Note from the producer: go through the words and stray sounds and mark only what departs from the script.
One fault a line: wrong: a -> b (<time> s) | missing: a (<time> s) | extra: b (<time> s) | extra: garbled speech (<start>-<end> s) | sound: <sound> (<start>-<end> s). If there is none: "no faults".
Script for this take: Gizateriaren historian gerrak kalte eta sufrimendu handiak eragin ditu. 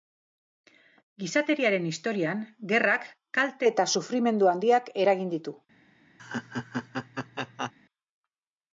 sound: laugh (6.2-7.7 s)